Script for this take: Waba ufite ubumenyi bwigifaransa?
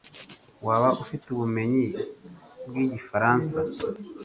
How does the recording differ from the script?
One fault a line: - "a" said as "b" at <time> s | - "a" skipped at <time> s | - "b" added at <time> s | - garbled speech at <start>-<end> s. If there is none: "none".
none